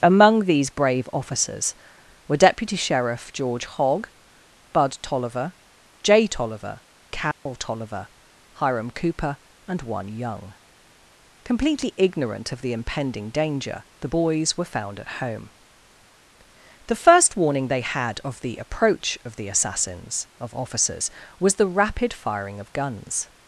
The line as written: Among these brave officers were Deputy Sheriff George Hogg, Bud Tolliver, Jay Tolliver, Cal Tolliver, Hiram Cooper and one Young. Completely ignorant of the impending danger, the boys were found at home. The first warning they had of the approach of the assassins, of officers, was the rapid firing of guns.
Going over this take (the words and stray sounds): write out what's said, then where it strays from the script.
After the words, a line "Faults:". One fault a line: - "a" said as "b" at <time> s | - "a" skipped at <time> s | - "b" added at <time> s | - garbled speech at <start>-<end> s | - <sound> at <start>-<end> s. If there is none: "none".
Among these brave officers were Deputy Sheriff George Hogg, Bud Tolliver, Jay Tolliver, Cal Tolliver, Hiram Cooper and one Young. Completely ignorant of the impending danger, the boys were found at home. The first warning they had of the approach of the assassins, of officers, was the rapid firing of guns.
Faults:
- dropout at 7.3-7.5 s